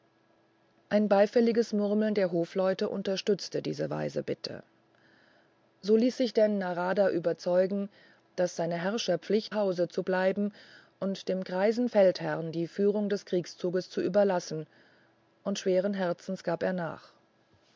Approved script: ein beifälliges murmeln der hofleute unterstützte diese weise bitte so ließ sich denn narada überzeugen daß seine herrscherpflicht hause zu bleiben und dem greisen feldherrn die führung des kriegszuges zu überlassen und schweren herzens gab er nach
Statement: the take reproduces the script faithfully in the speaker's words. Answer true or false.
true